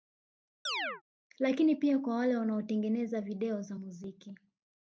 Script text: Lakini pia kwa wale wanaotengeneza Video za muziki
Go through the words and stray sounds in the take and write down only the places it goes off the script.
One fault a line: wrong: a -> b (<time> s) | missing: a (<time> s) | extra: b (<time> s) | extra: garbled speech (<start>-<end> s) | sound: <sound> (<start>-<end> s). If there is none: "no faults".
sound: chirp (0.7-1.0 s)